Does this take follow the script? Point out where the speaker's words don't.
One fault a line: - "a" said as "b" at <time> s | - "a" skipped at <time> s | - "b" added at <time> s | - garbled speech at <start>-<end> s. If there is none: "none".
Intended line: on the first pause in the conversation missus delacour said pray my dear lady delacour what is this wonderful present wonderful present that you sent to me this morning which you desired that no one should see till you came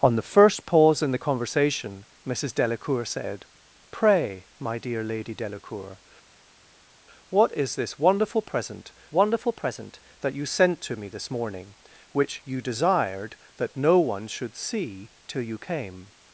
none